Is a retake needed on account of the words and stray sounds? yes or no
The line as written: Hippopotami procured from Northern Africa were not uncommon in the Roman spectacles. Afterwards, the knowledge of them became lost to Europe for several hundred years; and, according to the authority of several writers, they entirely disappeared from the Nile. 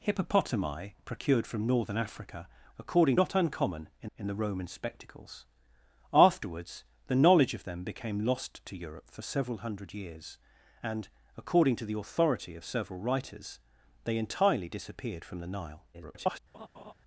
yes